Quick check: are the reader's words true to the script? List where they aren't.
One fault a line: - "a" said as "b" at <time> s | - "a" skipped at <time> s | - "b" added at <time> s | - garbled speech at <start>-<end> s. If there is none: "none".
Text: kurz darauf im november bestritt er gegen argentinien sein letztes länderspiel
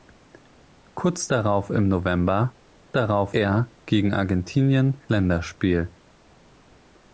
- "bestritt" said as "darauf" at 2.9 s
- "sein letztes" skipped at 5.0 s